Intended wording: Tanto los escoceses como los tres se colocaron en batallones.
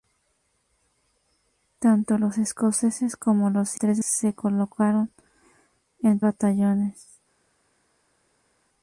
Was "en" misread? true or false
false